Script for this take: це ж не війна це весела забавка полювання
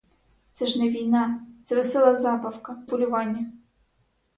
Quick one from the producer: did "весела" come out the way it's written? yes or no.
yes